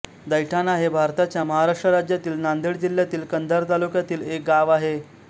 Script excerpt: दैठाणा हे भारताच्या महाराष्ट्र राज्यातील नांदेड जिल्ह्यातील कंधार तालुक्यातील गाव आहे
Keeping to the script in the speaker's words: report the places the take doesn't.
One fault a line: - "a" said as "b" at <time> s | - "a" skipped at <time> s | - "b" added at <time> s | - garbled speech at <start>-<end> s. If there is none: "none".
- "एक" added at 4.2 s